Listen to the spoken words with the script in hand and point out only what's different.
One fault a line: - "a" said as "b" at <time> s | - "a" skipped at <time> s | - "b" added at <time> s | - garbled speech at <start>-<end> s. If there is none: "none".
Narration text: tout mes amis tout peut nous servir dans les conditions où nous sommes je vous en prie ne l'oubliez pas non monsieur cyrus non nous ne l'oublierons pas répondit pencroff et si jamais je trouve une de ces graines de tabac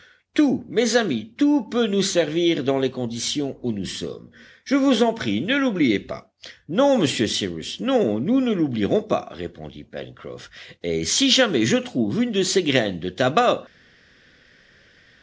none